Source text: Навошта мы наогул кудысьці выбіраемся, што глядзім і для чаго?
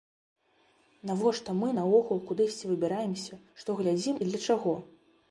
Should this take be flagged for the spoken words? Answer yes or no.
no